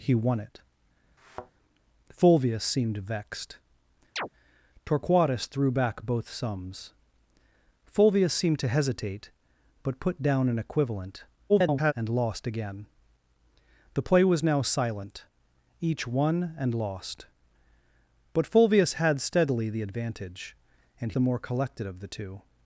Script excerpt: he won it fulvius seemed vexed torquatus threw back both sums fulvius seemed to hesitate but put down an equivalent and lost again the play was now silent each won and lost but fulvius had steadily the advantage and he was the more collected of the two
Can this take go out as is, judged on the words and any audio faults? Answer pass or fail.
fail